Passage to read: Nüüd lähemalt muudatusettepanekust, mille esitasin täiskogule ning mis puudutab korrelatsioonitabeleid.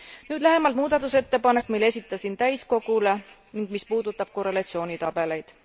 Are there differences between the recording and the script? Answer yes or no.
no